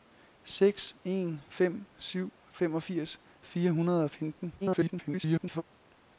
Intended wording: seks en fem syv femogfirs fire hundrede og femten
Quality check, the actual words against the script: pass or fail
fail